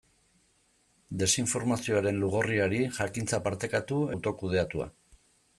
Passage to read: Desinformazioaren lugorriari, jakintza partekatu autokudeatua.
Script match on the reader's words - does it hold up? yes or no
yes